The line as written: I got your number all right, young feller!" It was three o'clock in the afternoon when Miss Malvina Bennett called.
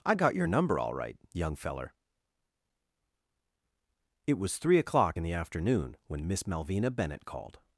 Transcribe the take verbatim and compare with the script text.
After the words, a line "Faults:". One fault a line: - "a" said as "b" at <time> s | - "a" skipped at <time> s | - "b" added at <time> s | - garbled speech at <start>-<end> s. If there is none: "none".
I got your number all right, young feller!" It was three o'clock in the afternoon when Miss Malvina Bennett called.
Faults:
none